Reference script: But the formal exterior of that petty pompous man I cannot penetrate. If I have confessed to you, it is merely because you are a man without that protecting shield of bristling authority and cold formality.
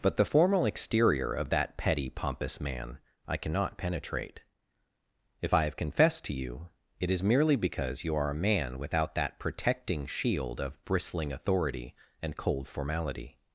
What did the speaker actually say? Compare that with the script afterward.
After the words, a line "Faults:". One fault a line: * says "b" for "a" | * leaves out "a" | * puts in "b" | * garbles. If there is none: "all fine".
But the formal exterior of that petty pompous man I cannot penetrate. If I have confessed to you, it is merely because you are a man without that protecting shield of bristling authority and cold formality.
Faults:
all fine